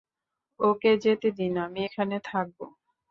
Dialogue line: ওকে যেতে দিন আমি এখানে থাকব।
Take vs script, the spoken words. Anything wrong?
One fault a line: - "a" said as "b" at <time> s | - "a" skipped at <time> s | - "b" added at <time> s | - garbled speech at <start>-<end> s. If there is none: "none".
none